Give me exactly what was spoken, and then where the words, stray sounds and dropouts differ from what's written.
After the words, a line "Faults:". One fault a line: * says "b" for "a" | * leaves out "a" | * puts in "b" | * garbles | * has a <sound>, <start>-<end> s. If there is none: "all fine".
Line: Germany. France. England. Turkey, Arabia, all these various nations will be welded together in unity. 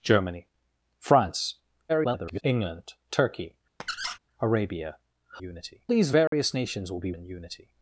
Germany. France. [garbled] England. Turkey, Arabia, unity these various nations will be in unity.
Faults:
* garbles
* has a squeak, 3.8-4.2 s
* says "unity" for "all"
* has a dropout, 6.3-6.3 s
* leaves out "welded together"